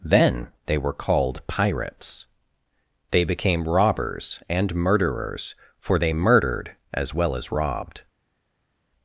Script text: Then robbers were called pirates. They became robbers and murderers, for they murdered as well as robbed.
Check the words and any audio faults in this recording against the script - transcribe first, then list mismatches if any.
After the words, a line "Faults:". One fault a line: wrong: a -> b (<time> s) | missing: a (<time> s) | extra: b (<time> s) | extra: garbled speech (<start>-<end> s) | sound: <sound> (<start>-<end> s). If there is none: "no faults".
Then they were called pirates. They became robbers and murderers, for they murdered as well as robbed.
Faults:
wrong: robbers -> they (0.7 s)